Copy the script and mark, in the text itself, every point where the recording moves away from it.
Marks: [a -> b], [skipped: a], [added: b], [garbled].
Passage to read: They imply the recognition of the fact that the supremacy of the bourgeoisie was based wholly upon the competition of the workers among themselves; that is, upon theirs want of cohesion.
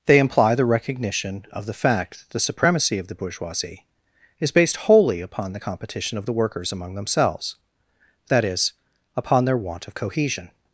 They imply the recognition of the fact that the supremacy of the bourgeoisie [was -> is] based wholly upon the competition of the workers among themselves; that is, upon [theirs -> their] want of cohesion.